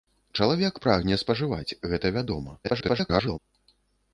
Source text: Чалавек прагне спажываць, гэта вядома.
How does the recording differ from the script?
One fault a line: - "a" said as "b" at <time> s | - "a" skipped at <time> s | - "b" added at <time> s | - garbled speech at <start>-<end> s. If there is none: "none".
- garbled speech at 2.6-3.4 s